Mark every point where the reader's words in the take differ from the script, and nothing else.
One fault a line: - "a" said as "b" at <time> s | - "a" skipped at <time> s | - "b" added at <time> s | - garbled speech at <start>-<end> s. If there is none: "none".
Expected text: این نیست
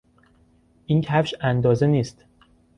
- "کفش اندازه" added at 1.0 s